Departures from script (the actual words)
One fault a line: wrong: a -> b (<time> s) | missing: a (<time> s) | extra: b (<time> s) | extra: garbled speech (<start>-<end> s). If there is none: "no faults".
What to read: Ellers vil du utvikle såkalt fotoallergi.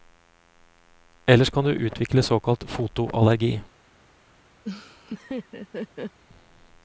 wrong: vil -> kan (1.5 s)